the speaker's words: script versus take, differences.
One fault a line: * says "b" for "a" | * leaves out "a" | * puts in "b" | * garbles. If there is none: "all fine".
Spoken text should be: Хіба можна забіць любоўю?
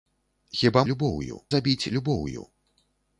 * says "любоўю" for "можна"